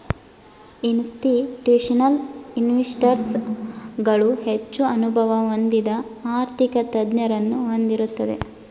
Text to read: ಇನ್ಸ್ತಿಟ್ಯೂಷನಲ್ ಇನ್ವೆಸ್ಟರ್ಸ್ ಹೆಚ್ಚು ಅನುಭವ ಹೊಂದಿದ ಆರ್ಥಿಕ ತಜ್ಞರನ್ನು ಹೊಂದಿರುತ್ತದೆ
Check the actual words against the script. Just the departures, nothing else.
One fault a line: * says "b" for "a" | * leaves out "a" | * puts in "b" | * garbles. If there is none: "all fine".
* puts in "ಗಳು"